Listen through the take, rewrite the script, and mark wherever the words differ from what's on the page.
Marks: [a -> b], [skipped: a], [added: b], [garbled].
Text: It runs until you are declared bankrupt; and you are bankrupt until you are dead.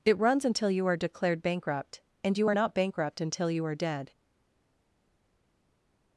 It runs until you are declared bankrupt; and you are [added: not] bankrupt until you are dead.